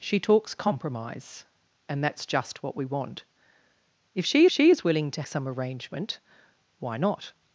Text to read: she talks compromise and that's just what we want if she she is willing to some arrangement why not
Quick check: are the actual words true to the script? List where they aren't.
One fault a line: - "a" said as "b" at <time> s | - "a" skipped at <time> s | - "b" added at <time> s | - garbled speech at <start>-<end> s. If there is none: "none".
none